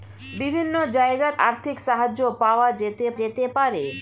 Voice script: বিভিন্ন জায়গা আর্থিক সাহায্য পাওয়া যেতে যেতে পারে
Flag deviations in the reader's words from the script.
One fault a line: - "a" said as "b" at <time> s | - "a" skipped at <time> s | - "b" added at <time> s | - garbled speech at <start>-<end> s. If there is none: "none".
none